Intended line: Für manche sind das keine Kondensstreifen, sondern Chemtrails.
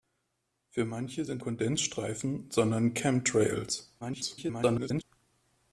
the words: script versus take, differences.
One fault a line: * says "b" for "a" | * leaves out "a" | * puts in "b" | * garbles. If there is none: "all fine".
* leaves out "das keine"
* garbles